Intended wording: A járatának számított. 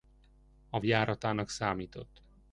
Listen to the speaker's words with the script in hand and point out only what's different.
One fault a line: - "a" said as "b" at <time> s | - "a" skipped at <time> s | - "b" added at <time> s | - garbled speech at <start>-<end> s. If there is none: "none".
none